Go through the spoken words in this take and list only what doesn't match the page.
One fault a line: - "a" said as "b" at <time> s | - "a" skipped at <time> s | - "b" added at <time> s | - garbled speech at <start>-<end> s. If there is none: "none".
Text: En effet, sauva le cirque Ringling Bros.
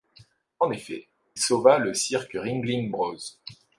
none